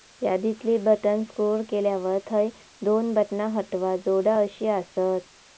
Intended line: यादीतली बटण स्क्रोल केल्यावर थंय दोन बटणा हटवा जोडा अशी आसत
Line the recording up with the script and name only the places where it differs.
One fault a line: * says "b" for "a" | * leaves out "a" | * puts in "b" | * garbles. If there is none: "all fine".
all fine